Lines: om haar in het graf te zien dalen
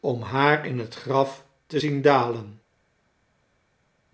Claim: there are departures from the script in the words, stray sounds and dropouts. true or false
false